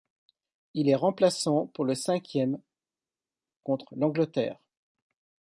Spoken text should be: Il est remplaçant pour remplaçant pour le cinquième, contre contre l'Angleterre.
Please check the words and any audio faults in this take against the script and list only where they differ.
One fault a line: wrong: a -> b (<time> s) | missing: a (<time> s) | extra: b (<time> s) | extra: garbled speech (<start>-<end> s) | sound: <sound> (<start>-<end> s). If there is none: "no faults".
missing: remplaçant pour (1.9 s)
missing: contre (3.9 s)